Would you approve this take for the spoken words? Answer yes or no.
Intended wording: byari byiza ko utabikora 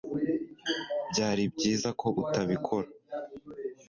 yes